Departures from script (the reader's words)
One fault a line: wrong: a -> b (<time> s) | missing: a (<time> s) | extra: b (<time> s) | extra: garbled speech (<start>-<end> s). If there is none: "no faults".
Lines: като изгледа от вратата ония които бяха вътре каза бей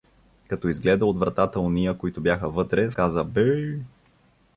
no faults